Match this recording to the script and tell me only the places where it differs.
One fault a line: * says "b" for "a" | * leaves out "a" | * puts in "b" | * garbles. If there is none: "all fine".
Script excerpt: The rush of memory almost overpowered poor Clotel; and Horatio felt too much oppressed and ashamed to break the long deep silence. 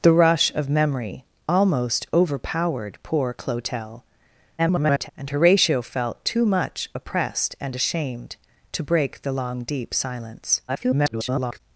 * garbles
* garbles